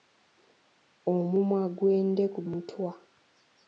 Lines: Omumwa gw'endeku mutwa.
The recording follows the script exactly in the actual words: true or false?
true